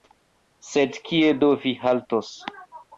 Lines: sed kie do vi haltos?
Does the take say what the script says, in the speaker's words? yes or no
yes